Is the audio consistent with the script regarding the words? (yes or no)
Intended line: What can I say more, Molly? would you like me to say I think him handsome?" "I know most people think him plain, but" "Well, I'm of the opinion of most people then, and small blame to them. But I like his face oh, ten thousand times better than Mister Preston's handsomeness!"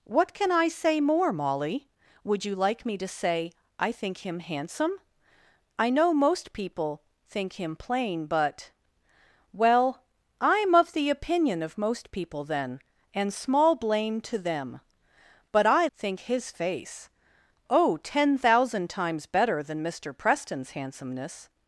no